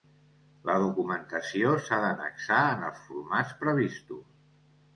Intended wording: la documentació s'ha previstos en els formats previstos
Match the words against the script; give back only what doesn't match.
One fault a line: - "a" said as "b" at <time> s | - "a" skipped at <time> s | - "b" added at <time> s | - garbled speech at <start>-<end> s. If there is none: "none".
- "previstos" said as "d'annexar" at 2.0 s